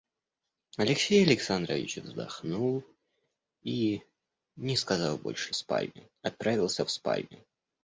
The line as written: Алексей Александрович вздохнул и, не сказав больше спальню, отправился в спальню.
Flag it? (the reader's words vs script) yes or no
no